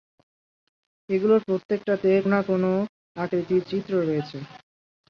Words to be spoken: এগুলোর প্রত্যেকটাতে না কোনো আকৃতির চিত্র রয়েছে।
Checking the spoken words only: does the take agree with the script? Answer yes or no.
yes